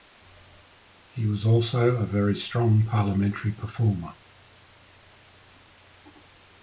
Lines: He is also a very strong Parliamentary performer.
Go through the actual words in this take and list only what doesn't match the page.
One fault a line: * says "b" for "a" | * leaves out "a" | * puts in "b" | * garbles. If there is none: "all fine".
* says "was" for "is"